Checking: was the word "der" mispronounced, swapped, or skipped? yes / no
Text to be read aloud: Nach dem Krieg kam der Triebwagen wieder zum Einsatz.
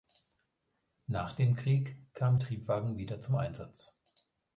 yes